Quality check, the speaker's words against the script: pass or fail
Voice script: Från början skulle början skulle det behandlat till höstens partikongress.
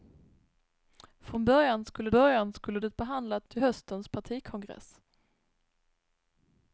pass